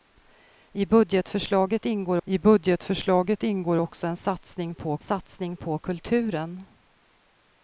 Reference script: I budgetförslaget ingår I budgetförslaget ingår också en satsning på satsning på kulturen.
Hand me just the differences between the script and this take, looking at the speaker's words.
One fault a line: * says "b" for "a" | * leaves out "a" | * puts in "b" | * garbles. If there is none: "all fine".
all fine